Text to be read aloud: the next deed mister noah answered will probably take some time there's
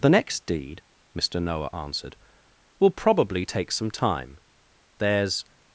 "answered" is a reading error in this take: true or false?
false